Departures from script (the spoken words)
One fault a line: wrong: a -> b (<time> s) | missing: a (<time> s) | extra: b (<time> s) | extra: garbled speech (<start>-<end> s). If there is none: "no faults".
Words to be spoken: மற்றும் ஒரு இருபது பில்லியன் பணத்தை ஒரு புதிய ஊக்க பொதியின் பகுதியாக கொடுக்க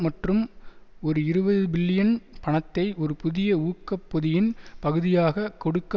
no faults